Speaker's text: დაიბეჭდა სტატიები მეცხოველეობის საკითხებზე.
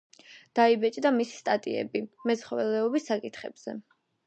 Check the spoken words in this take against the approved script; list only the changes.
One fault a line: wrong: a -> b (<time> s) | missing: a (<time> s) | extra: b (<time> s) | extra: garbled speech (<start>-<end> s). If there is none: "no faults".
extra: მისი (1.2 s)